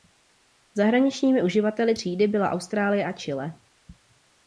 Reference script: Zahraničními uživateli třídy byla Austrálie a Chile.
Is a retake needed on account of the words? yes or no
no